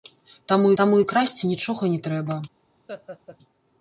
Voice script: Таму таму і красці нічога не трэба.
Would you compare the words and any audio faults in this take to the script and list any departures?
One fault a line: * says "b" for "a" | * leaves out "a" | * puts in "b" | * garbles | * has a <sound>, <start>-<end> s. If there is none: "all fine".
* has a laugh, 2.9-3.4 s